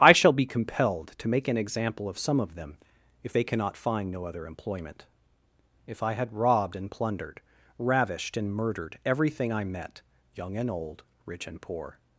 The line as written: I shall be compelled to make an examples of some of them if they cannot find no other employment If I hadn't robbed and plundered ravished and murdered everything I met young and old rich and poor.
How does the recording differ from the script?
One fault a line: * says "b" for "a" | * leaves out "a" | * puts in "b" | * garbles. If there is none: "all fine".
* says "example" for "examples"
* says "had" for "hadn't"